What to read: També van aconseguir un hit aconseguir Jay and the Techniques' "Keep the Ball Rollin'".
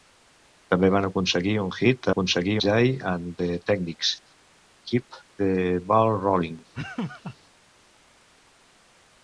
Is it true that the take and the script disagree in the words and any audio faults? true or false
true